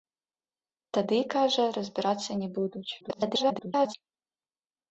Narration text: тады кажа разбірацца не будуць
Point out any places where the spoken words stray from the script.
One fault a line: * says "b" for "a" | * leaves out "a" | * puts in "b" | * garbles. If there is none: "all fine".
* garbles